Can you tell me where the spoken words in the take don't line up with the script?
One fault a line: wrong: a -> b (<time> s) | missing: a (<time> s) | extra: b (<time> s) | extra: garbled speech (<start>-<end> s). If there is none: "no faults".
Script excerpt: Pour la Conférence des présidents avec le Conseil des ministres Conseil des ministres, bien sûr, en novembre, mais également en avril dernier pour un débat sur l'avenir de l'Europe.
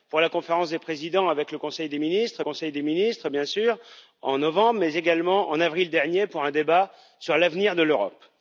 no faults